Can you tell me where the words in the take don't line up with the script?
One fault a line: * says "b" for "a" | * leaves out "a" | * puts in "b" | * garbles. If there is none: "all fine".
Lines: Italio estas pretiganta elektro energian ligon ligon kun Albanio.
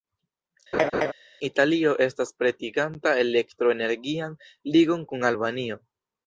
* leaves out "ligon"